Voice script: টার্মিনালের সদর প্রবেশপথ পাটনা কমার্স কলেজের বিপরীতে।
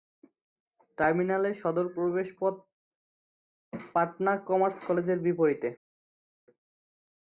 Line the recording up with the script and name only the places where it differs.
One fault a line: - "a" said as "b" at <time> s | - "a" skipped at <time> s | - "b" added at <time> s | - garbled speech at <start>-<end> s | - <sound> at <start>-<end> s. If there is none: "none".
none